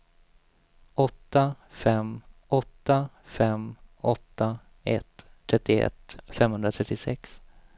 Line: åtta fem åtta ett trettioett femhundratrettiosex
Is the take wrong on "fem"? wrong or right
right